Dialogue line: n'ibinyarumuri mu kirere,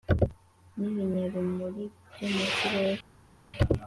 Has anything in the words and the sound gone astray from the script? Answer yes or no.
yes